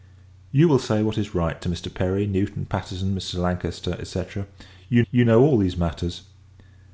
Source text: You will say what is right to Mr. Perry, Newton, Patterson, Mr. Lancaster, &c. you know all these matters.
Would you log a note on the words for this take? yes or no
yes